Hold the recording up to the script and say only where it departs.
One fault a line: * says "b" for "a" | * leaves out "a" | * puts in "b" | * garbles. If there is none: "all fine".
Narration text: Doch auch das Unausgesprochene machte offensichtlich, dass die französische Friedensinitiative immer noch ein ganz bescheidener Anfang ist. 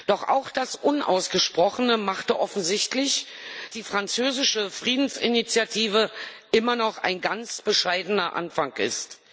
* leaves out "dass"